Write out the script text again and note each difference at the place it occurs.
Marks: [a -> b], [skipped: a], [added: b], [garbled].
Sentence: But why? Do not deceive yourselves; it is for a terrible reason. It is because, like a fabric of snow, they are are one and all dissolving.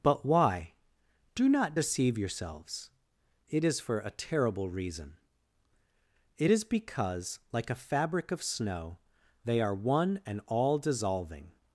But why? Do not deceive yourselves; it is for a terrible reason. It is because, like a fabric of snow, they are [skipped: are] one and all dissolving.